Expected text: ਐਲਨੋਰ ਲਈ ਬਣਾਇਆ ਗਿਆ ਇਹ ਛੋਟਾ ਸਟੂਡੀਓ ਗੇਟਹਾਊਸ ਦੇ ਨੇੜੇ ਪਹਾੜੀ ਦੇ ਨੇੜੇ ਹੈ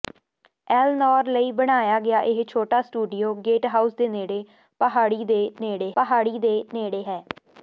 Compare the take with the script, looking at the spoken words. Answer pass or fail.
fail